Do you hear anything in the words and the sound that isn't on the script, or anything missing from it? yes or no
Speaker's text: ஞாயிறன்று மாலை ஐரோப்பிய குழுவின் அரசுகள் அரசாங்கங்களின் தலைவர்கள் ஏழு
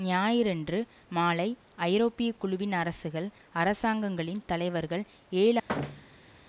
yes